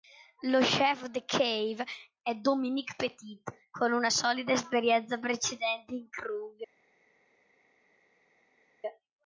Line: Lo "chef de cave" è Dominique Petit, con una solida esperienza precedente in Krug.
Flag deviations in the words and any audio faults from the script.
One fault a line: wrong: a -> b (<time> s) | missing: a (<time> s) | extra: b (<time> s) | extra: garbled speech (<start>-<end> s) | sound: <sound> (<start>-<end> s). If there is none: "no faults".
no faults